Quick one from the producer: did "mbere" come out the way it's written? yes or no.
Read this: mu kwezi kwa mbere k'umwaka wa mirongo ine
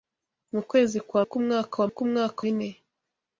no